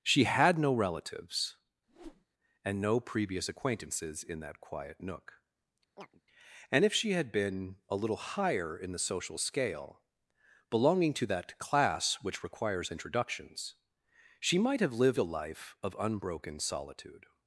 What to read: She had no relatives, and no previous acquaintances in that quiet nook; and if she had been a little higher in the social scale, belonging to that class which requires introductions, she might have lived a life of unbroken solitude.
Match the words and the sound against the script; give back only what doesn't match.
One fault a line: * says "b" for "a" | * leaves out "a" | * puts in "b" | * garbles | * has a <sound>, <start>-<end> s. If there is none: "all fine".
* has a whoosh, 1.9-2.2 s
* has a chirp, 6.0-6.2 s